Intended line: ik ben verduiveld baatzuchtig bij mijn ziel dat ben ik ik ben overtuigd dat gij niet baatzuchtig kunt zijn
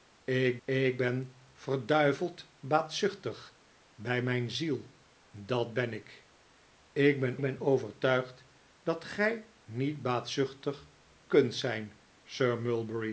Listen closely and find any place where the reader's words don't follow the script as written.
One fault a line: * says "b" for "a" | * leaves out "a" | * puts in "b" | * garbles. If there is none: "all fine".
* puts in "ik"
* puts in "ben"